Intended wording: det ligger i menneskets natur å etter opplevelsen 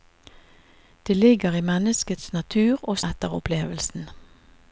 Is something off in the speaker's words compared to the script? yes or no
no